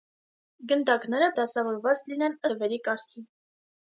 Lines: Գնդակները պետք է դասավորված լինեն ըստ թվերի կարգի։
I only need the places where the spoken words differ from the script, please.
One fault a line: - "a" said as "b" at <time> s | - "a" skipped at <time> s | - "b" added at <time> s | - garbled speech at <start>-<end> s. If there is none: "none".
- "պետք" skipped at 1.3 s
- "ըստ" skipped at 2.4 s